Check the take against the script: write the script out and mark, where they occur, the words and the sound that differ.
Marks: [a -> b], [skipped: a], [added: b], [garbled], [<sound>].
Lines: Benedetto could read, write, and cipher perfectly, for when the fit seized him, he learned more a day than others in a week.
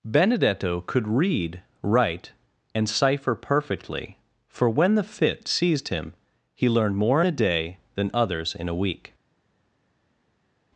Benedetto could read, write, and cipher perfectly, for when the fit seized him, he learned more a day than others in a week.